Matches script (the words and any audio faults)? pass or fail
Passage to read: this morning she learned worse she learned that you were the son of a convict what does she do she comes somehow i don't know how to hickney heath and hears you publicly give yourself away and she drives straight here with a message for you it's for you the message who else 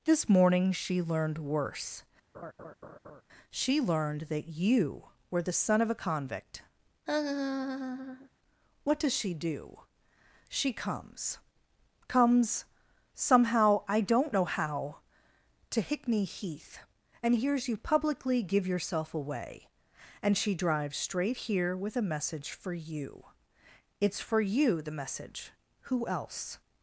fail